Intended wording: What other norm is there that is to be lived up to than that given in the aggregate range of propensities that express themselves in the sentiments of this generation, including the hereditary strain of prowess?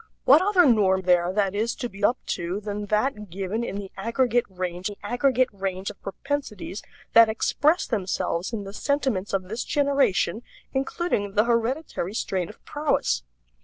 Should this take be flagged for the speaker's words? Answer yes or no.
yes